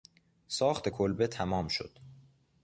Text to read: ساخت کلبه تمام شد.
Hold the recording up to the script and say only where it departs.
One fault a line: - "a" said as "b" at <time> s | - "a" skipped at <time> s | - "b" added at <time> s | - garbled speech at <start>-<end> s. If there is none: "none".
none